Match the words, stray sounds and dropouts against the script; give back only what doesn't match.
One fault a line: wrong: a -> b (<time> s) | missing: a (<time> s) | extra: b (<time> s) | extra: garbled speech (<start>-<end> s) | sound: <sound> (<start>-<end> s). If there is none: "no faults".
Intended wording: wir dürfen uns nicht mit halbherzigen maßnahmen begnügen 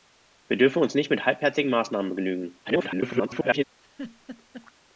extra: garbled speech (2.6-3.6 s)
sound: laugh (3.8-4.7 s)